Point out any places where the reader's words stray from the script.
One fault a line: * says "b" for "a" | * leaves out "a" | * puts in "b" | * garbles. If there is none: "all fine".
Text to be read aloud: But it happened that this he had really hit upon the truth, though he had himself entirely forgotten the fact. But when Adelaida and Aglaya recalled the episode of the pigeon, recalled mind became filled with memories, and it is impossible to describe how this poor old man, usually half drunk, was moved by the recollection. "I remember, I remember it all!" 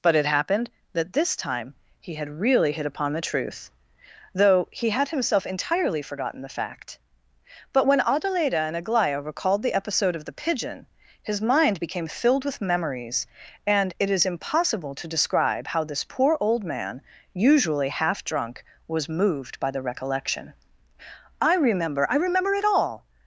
* puts in "time"
* says "his" for "recalled"